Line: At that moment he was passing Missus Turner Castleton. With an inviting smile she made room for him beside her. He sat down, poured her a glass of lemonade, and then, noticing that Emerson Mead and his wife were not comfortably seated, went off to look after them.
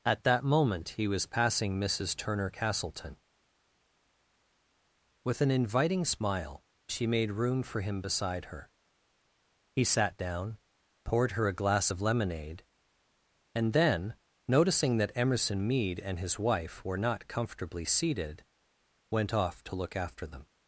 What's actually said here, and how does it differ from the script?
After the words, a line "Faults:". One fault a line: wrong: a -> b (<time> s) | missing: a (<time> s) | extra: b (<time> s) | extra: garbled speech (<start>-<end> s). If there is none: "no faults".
At that moment he was passing Missus Turner Castleton. With an inviting smile she made room for him beside her. He sat down, poured her a glass of lemonade, and then, noticing that Emerson Mead and his wife were not comfortably seated, went off to look after them.
Faults:
no faults